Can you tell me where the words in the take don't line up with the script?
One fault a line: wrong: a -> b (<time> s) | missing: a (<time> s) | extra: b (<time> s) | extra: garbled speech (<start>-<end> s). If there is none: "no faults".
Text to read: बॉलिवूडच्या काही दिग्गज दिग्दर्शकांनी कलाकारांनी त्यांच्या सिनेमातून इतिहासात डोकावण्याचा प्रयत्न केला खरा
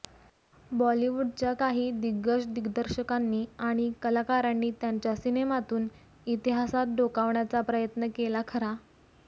extra: आणि (3.6 s)